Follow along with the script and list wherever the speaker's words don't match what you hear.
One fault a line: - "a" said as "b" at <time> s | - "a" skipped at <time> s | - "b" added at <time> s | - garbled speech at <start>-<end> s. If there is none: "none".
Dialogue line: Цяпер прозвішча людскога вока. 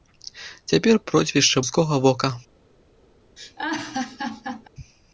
none